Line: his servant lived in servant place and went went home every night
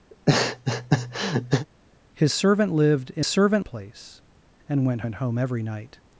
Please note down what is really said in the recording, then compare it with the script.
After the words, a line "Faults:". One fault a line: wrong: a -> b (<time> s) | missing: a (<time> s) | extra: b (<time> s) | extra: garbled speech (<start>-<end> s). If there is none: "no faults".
his servant lived in servant place and went went home every night
Faults:
no faults